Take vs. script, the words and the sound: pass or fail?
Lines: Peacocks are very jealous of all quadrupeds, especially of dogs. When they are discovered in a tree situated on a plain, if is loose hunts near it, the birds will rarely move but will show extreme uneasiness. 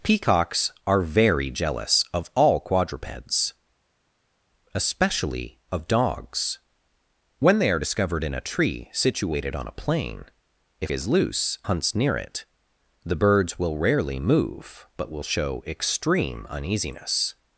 pass